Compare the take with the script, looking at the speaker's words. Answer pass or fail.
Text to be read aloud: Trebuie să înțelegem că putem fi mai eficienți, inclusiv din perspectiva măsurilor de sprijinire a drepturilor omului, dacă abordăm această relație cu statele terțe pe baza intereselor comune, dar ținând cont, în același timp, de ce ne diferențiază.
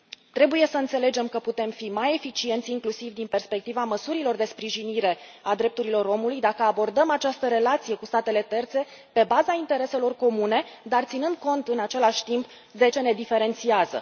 pass